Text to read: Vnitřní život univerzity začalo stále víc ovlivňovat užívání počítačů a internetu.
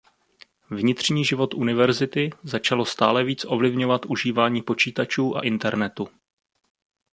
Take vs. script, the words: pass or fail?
pass